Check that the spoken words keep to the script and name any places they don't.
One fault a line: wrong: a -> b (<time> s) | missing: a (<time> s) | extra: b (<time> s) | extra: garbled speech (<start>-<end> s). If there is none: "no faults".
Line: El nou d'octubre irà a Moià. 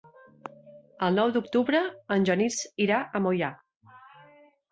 extra: en Genís (2.1 s)